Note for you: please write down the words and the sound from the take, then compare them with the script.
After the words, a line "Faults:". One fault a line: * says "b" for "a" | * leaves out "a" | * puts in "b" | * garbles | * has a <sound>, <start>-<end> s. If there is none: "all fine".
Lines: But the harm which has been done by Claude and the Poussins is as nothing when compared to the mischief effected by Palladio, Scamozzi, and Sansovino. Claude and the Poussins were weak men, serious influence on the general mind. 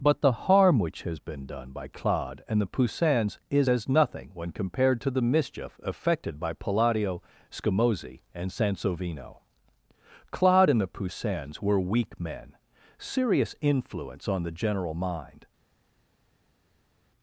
But the harm which has been done by Claude and the Poussins is as nothing when compared to the mischief effected by Palladio, Scamozzi, and Sansovino. Claude and the Poussins were weak men, serious influence on the general mind.
Faults:
all fine